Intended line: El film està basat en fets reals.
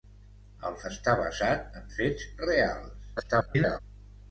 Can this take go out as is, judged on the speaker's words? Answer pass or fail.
fail